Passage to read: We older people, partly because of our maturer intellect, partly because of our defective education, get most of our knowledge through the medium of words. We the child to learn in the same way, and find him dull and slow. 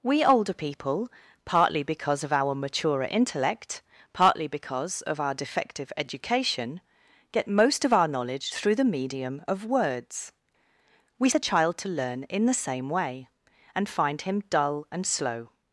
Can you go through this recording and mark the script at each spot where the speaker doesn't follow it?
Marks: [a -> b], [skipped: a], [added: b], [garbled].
We older people, partly because of our maturer intellect, partly because of our defective education, get most of our knowledge through the medium of words. We the child to learn in the same way, and find him dull and slow.